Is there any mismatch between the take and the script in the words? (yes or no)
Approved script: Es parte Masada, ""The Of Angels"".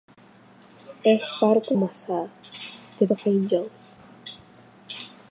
no